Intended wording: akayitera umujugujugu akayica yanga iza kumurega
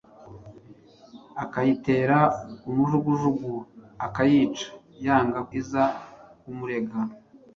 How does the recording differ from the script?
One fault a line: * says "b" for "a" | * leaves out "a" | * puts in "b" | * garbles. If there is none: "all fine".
all fine